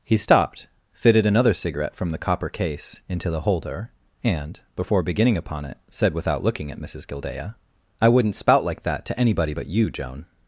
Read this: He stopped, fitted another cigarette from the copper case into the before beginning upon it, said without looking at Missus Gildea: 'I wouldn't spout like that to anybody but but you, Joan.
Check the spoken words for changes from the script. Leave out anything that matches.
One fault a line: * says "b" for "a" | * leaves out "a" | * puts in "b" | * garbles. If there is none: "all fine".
* puts in "holder and"
* leaves out "but"